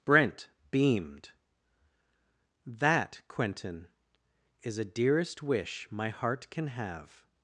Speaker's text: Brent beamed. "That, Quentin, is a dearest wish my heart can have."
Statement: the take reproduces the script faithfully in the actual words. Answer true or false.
true